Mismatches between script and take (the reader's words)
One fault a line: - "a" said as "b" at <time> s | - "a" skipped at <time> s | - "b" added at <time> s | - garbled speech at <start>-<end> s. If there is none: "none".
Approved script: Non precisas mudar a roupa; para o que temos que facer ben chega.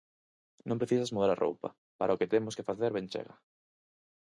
none